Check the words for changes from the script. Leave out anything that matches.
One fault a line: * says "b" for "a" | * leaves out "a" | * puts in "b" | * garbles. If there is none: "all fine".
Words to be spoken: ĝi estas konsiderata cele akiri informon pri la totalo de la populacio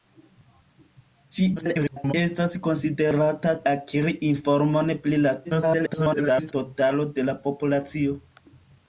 * garbles
* leaves out "cele"
* garbles